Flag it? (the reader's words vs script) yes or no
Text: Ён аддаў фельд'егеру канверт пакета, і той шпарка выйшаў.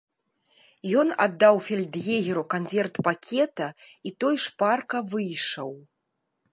no